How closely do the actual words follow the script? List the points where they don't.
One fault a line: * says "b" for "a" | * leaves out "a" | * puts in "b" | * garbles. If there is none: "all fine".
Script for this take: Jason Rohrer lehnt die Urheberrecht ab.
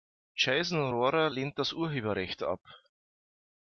* says "das" for "die"